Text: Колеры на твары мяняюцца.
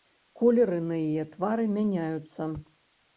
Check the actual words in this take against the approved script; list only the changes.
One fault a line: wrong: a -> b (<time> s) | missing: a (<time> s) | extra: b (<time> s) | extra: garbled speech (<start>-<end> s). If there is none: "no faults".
extra: яе (1.1 s)